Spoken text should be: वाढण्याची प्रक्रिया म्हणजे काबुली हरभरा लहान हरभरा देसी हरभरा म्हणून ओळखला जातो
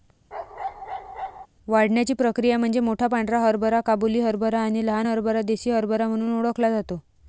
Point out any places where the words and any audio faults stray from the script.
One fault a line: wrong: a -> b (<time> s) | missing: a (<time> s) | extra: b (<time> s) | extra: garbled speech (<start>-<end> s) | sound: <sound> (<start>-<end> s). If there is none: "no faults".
sound: bark (0.3-1.5 s)
extra: मोठा पांढरा हरभरा (2.8 s)
extra: आणि (4.6 s)